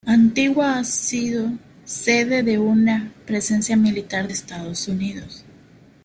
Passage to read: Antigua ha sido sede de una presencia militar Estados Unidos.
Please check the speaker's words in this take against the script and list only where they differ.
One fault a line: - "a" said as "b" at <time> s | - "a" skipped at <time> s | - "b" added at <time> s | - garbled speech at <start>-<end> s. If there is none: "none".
none